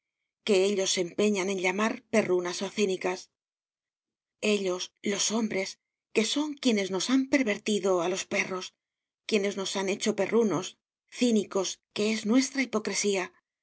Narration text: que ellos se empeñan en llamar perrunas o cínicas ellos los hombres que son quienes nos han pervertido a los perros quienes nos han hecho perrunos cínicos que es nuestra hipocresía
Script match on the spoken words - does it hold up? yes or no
yes